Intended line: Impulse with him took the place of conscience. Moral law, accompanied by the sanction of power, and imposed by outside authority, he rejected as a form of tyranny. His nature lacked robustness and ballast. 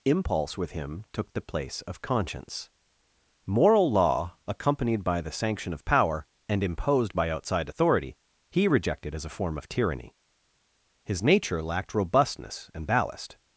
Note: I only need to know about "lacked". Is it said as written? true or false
true